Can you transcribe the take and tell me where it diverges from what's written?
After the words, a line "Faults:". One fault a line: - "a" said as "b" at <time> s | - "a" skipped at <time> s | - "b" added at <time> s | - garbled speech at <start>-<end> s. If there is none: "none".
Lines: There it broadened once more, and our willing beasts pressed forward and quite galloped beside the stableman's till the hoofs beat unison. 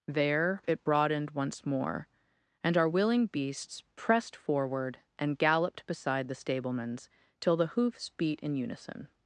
There it broadened once more, and our willing beasts pressed forward and galloped beside the stableman's till the hoofs beat in unison.
Faults:
- "quite" skipped at 5.4 s
- "in" added at 8.4 s